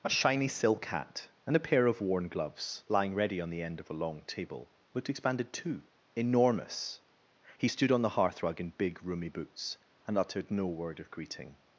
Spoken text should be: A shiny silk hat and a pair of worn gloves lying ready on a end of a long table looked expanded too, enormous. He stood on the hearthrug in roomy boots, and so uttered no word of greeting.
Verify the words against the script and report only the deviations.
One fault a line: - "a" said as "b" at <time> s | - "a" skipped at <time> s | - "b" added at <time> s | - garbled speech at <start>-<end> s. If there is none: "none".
- "a" said as "the" at 3.5 s
- "big" added at 8.7 s
- "so" skipped at 10.2 s